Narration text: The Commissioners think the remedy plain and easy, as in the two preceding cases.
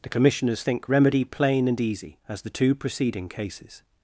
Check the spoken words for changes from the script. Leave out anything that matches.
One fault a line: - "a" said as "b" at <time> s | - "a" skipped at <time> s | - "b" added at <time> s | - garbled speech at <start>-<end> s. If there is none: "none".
- "the" skipped at 0.9 s
- "in" skipped at 2.4 s